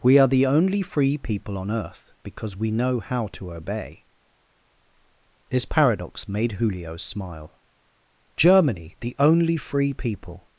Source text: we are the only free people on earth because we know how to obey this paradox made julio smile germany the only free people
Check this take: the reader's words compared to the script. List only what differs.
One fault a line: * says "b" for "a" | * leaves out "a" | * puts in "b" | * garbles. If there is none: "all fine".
all fine